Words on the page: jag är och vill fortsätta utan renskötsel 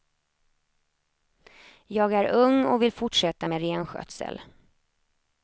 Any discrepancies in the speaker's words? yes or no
yes